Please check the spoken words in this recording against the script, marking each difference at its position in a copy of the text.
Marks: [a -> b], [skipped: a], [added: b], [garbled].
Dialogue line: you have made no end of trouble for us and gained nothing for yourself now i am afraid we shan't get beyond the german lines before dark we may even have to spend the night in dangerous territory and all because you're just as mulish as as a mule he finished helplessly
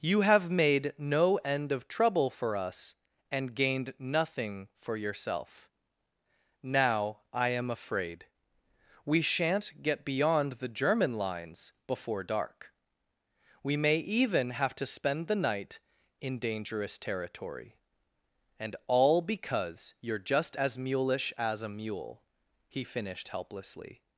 you have made no end of trouble for us and gained nothing for yourself now i am afraid we shan't get beyond the german lines before dark we may even have to spend the night in dangerous territory and all because you're just as mulish as [skipped: as] a mule he finished helplessly